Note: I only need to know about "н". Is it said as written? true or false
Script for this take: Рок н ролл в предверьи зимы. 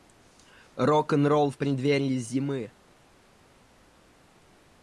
true